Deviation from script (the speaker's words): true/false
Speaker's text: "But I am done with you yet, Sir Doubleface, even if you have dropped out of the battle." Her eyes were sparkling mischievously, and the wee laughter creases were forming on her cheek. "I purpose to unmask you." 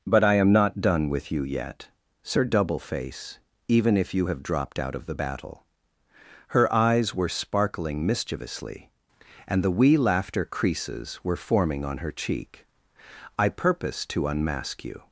true